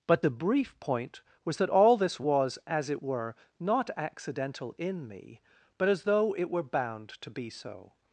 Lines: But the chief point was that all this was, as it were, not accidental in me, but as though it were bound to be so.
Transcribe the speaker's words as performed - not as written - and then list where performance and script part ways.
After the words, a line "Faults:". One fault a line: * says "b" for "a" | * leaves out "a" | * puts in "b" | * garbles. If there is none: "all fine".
But the brief point was that all this was, as it were, not accidental in me, but as though it were bound to be so.
Faults:
* says "brief" for "chief"